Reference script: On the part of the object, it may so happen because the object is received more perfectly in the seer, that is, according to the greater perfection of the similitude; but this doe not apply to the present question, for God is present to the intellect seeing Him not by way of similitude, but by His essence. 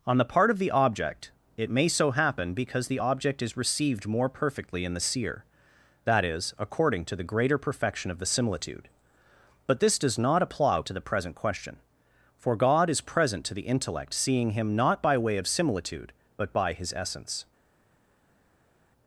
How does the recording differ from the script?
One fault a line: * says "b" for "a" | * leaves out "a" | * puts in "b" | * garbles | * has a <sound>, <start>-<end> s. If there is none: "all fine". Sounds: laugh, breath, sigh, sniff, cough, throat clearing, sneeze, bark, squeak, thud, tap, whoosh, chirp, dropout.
* says "does" for "doe"